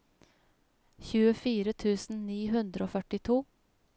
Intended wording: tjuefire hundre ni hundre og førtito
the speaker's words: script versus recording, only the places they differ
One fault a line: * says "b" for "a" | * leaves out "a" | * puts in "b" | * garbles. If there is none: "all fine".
* says "tusen" for "hundre"